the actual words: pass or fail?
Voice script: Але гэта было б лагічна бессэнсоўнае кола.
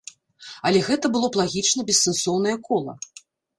pass